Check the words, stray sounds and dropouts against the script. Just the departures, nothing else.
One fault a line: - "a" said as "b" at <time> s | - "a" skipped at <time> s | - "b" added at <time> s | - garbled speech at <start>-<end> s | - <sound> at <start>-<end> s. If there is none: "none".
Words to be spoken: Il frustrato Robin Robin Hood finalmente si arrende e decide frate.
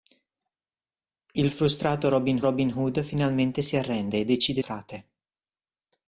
none